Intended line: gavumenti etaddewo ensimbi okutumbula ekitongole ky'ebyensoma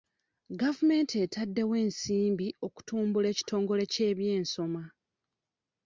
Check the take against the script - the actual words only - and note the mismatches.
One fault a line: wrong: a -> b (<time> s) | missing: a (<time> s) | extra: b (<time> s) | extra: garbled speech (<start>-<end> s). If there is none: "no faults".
no faults